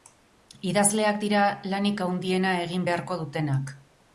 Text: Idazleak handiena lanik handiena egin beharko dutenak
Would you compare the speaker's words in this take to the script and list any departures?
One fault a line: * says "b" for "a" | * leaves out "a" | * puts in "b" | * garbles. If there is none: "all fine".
* says "dira" for "handiena"